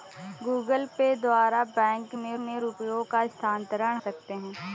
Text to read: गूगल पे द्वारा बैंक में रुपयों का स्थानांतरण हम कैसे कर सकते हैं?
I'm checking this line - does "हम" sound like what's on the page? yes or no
no